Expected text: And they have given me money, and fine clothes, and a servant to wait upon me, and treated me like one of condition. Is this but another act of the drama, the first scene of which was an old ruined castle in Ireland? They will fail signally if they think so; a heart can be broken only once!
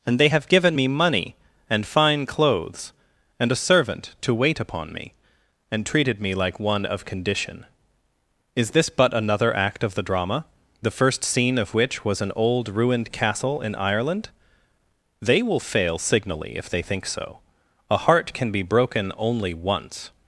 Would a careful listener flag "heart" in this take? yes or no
no